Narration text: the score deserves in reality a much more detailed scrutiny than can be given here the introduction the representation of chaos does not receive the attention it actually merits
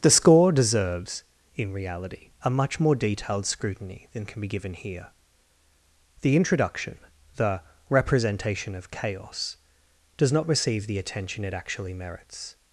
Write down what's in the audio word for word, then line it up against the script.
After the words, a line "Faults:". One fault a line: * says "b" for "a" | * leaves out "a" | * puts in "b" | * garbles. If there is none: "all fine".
the score deserves in reality a much more detailed scrutiny than can be given here the introduction the representation of chaos does not receive the attention it actually merits
Faults:
all fine